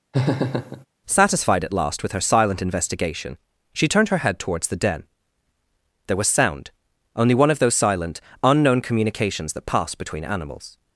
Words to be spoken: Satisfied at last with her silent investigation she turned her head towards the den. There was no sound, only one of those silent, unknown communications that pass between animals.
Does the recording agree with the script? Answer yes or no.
no